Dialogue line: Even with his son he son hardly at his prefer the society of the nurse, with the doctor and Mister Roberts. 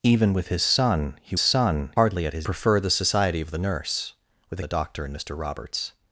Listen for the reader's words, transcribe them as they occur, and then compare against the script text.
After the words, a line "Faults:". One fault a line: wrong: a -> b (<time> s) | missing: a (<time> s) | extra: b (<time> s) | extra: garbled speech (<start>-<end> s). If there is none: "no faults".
Even with his son he son hardly at his prefer the society of the nurse, with the doctor and Mister Roberts.
Faults:
no faults